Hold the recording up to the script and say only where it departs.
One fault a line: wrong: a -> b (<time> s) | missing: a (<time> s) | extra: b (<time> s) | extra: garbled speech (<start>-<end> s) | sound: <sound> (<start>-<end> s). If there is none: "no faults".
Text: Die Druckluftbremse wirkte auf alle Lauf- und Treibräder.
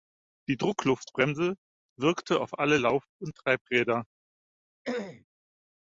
sound: throat clearing (4.8-5.2 s)